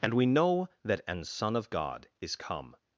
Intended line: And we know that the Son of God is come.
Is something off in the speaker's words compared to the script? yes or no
yes